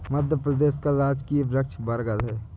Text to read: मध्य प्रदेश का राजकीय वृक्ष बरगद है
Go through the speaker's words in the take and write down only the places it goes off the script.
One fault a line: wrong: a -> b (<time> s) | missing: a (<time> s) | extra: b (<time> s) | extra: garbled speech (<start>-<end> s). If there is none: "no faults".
no faults